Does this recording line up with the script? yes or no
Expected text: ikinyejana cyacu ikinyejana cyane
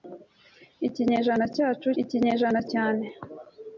yes